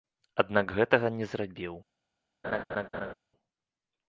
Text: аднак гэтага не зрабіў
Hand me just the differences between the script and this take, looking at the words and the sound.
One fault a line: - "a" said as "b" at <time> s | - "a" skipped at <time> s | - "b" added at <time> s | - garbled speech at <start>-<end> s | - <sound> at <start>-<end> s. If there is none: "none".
- laugh at 2.4-3.1 s